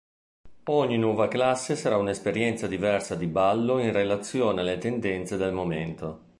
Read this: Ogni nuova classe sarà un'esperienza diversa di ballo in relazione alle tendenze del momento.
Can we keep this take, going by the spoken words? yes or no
yes